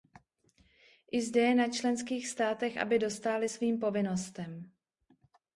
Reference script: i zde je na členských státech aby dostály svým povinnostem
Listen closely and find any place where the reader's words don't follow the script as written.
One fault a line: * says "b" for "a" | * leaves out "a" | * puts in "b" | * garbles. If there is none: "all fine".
all fine